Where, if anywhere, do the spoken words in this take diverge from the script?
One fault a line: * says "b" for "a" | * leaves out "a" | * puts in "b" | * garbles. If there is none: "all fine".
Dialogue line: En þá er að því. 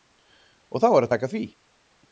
* says "Og" for "En"
* puts in "taka"